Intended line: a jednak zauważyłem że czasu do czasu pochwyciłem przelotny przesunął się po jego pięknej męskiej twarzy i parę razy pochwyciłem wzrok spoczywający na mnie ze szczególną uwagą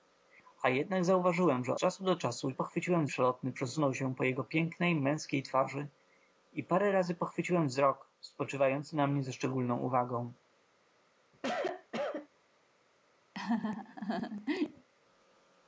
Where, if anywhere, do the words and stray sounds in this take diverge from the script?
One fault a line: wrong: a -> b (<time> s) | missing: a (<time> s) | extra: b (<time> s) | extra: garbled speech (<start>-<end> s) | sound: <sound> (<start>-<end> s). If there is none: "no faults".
sound: cough (11.3-12.3 s)
sound: laugh (13.3-14.9 s)